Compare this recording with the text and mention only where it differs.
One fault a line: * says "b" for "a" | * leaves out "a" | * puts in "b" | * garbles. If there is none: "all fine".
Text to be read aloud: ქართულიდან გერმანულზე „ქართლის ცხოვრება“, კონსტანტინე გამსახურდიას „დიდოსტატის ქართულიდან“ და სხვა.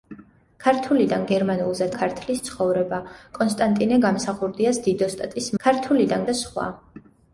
all fine